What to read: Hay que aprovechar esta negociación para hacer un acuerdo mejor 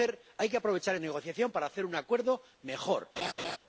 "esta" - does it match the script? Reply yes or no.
no